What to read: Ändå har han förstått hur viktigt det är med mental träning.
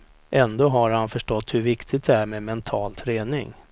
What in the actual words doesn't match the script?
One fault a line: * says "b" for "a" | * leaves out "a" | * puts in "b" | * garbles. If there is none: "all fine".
all fine